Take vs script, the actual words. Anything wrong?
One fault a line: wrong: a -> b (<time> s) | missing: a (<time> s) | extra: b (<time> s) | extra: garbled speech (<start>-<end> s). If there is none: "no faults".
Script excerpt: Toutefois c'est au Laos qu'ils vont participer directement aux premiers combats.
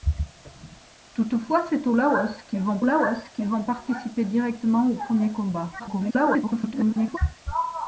extra: Laos qu'ils vont (2.8 s)
extra: garbled speech (5.8-7.2 s)